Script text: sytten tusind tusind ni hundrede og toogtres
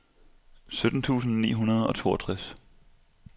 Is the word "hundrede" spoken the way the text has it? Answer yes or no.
yes